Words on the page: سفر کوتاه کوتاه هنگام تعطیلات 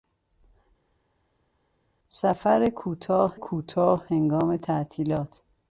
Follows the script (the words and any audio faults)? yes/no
yes